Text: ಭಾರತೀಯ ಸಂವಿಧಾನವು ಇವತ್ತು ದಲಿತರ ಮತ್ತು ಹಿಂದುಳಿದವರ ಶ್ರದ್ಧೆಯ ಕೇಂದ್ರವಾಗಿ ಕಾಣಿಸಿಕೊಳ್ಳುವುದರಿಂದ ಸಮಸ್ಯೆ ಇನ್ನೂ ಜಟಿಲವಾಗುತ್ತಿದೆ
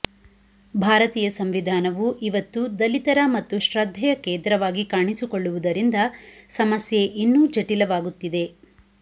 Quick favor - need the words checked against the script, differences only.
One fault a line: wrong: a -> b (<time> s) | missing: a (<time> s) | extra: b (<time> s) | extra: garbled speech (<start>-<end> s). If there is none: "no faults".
missing: ಹಿಂದುಳಿದವರ (3.6 s)